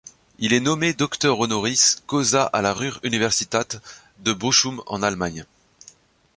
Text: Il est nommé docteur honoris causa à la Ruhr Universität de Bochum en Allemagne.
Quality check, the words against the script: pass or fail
pass